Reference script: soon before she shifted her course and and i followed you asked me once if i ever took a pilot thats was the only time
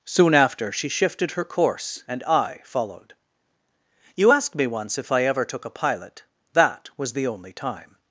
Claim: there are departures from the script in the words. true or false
true